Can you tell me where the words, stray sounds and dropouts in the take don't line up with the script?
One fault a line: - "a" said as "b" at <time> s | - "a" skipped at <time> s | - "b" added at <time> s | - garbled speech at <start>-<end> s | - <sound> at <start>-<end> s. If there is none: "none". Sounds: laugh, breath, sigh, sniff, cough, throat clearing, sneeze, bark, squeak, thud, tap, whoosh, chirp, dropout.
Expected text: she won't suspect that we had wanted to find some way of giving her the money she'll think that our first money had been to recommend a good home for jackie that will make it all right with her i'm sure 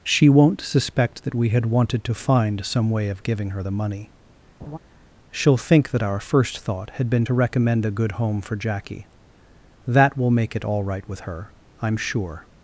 - laugh at 4.6-4.8 s
- "money" said as "thought" at 6.6 s